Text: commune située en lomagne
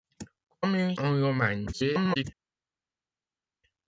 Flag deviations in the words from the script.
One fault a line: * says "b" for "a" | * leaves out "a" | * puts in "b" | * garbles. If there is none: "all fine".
* leaves out "située"
* garbles